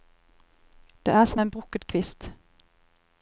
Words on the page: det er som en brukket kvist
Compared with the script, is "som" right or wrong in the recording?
right